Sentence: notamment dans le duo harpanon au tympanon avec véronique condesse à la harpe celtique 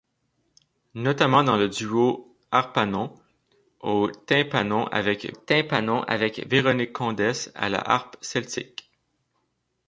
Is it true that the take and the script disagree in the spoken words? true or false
true